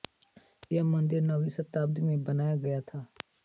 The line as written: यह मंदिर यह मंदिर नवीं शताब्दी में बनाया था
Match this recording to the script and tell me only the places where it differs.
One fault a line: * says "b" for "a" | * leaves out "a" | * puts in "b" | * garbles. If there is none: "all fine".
* leaves out "यह मंदिर"
* puts in "गया"